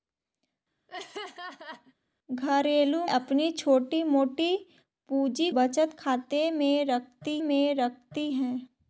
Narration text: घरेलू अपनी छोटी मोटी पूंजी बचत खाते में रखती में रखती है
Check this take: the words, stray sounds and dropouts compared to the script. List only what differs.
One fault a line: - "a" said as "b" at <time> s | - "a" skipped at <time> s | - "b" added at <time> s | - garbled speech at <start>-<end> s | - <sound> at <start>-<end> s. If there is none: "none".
- laugh at 0.9-1.9 s